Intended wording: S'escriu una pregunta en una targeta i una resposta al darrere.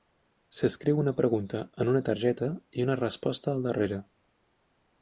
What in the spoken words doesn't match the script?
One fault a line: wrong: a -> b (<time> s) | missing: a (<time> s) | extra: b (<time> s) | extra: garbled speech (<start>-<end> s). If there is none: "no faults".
no faults